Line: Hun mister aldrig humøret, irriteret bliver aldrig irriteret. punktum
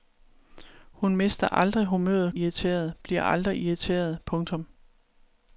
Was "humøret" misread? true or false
false